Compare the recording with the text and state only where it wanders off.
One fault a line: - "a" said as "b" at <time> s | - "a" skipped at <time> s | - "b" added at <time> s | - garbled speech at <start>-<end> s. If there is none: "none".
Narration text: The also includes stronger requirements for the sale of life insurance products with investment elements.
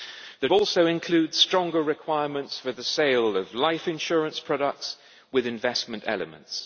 none